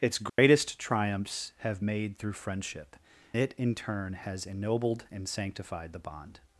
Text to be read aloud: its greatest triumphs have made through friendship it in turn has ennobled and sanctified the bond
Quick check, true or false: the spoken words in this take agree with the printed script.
true